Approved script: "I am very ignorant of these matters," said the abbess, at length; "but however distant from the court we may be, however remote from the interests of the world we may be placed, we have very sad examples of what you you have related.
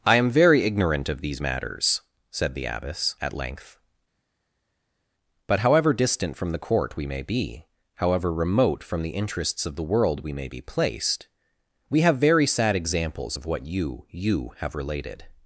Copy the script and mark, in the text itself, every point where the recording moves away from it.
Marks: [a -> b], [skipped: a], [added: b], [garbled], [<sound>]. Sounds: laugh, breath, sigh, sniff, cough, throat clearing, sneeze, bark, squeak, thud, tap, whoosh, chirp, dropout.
"I am very ignorant of these matters," said the abbess, at length; "but however distant from the court we may be, however remote from the interests of the world we may be placed, we have very sad examples of what you you have related.